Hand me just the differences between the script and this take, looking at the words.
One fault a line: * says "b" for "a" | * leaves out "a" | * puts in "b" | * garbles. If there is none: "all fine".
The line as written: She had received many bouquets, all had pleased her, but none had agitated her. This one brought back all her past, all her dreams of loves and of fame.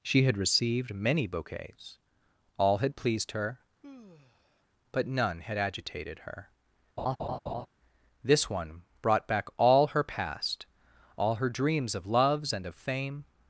all fine